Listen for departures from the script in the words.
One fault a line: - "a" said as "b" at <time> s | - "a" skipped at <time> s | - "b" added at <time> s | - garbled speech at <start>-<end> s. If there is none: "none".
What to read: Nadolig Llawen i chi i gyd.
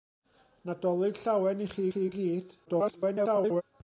- "chi" added at 1.9 s
- garbled speech at 2.7-3.6 s